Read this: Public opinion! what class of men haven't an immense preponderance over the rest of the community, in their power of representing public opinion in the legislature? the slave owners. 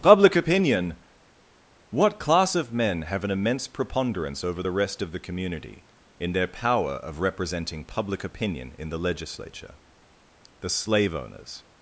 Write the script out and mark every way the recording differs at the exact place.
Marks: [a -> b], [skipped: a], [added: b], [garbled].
Public opinion! what class of men [haven't -> have] an immense preponderance over the rest of the community, in their power of representing public opinion in the legislature? the slave owners.